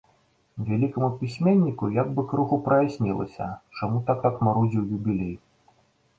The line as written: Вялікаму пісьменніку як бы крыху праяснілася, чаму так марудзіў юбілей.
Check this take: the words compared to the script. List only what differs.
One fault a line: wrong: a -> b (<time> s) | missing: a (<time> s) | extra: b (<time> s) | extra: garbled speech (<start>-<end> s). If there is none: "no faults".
extra: так (4.2 s)